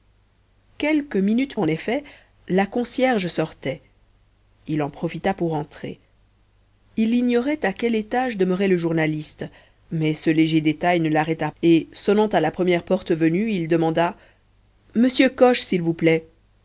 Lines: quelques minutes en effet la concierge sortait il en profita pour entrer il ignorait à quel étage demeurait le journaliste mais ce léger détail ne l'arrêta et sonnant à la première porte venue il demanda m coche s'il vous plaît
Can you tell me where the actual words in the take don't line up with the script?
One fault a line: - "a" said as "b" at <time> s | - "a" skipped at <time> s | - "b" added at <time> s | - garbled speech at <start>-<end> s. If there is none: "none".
none